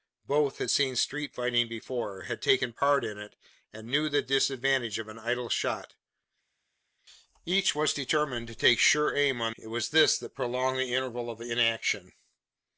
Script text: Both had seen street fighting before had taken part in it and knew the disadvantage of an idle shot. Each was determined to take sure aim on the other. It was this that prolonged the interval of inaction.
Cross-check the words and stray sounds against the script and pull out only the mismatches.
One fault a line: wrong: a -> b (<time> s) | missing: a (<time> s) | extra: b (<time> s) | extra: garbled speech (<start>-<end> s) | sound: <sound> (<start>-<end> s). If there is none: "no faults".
missing: the other (9.5 s)